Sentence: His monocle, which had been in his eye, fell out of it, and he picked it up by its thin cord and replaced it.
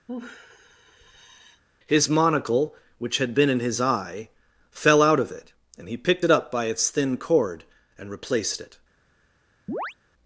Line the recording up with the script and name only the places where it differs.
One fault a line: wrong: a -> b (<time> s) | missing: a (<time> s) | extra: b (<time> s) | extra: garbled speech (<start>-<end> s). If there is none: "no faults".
no faults